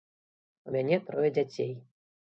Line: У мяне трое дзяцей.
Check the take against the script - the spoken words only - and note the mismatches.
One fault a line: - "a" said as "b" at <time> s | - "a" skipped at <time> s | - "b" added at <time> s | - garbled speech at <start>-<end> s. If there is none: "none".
none